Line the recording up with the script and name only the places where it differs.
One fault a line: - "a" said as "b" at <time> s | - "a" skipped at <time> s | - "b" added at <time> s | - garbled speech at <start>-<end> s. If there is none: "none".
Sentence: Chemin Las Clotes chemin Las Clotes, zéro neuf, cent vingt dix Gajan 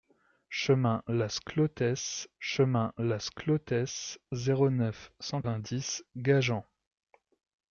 none